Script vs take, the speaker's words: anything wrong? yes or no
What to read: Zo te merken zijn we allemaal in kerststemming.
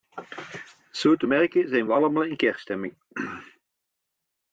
no